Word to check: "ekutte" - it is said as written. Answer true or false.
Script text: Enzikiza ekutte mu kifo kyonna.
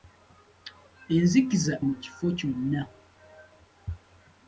false